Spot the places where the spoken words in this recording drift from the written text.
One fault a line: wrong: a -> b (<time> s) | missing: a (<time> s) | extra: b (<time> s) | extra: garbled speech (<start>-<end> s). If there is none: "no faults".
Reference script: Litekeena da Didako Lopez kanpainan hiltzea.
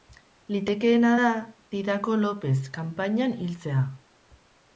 no faults